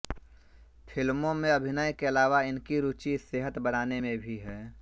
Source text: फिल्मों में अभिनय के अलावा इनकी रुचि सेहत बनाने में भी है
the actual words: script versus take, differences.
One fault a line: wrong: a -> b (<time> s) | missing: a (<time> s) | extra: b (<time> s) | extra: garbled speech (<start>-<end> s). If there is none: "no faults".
no faults